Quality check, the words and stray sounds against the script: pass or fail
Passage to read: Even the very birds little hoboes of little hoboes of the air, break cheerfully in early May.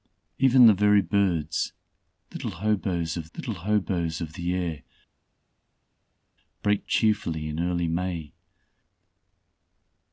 pass